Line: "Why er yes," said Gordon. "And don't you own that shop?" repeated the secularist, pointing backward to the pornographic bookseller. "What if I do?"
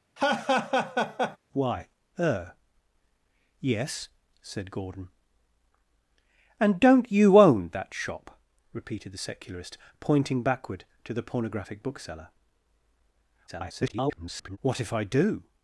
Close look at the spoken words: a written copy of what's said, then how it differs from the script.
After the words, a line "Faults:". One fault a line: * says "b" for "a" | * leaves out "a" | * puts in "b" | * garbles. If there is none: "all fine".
"Why er yes," said Gordon. "And don't you own that shop?" repeated the secularist, pointing backward to the pornographic bookseller. [garbled] "What if I do?"
Faults:
* garbles